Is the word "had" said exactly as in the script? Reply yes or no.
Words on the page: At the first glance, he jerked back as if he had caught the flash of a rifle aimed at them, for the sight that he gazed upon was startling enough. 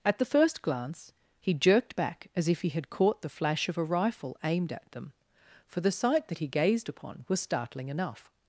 yes